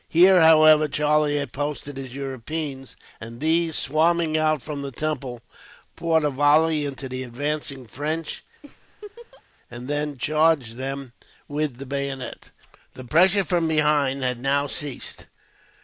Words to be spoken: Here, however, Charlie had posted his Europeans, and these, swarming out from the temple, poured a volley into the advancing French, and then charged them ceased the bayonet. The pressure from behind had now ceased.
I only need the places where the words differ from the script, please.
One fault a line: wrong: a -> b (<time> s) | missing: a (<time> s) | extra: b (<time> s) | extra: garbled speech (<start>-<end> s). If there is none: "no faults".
wrong: ceased -> with (11.5 s)